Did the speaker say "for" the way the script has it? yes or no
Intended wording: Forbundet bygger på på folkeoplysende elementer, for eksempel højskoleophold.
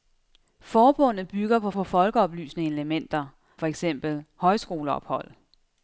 yes